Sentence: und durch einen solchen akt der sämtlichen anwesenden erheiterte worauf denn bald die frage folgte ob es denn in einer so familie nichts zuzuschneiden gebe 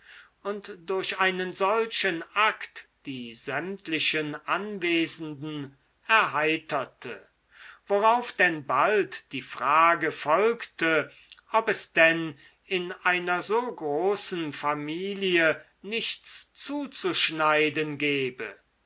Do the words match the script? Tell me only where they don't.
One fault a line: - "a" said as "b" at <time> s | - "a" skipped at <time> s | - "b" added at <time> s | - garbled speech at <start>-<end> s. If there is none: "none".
- "der" said as "die" at 3.0 s
- "großen" added at 13.8 s